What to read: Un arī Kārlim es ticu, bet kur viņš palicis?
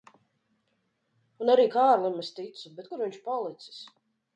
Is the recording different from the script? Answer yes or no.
no